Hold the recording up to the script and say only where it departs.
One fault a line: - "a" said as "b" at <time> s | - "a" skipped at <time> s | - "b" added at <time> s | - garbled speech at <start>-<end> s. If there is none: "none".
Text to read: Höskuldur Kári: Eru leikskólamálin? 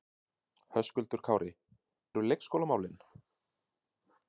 none